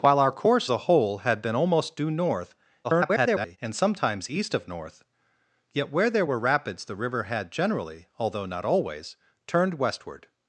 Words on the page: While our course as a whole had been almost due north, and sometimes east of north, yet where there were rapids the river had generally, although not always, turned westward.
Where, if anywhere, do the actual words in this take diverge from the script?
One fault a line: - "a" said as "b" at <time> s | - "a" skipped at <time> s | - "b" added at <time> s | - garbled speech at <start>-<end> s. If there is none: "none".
- "as" skipped at 0.7 s
- garbled speech at 2.8-3.6 s